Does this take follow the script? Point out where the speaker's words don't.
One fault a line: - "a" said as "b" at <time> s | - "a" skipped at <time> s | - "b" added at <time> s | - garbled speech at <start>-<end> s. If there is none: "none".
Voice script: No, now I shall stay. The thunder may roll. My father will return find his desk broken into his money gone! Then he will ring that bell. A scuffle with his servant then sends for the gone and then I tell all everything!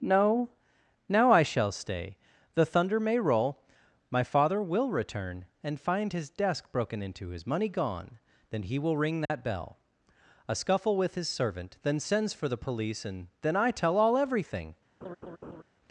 - "and" added at 5.6 s
- "gone" said as "police" at 12.6 s